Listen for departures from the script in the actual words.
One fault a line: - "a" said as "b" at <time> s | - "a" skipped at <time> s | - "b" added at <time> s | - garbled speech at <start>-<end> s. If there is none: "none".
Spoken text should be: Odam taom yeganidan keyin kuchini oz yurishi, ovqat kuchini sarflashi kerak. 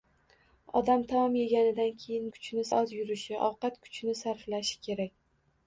none